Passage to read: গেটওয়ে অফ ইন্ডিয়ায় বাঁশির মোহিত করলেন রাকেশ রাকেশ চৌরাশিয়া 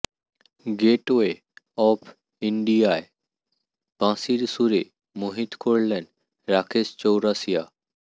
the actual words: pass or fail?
fail